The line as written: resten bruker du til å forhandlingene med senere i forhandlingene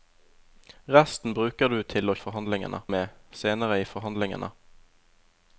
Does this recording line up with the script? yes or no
yes